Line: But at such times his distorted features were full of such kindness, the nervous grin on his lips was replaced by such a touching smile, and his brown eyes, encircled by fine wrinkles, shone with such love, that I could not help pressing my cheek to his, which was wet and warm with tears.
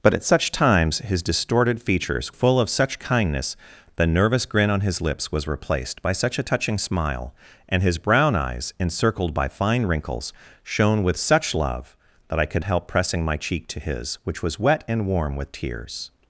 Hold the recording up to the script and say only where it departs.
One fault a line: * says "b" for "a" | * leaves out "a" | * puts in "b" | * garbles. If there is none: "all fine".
* leaves out "were"
* leaves out "not"